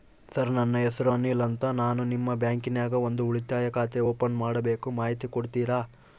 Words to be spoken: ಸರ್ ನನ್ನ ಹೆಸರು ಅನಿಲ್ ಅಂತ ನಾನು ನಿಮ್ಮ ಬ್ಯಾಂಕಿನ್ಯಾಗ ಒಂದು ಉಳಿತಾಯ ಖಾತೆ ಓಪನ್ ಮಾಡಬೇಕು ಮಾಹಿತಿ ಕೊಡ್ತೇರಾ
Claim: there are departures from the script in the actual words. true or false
false